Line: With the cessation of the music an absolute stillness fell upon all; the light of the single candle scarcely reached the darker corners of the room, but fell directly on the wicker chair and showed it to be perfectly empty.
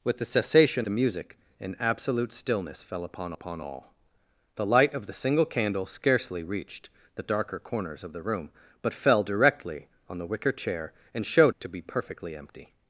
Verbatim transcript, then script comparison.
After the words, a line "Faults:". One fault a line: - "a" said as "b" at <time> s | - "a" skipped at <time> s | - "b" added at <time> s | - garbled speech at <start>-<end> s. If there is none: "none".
With the cessation the music an absolute stillness fell upon upon all; the light of the single candle scarcely reached the darker corners of the room, but fell directly on the wicker chair and showed to be perfectly empty.
Faults:
- "of" skipped at 0.9 s
- "upon" added at 3.3 s
- "it" skipped at 11.6 s